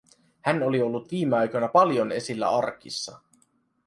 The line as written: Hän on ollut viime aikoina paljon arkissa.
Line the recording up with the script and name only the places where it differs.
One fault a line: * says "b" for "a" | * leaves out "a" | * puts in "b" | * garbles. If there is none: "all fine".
* says "oli" for "on"
* puts in "esillä"